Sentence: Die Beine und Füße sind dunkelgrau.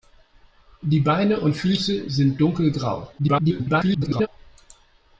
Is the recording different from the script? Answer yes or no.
yes